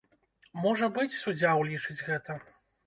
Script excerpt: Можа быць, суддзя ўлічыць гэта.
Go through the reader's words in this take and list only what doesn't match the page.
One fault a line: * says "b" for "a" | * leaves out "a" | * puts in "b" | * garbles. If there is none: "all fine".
all fine